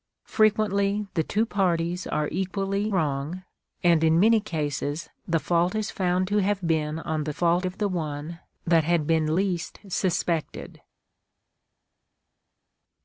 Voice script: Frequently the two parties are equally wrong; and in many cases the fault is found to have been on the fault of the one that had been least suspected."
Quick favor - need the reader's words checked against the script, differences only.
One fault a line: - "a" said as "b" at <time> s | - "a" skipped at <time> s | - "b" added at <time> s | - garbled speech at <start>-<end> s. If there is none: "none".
none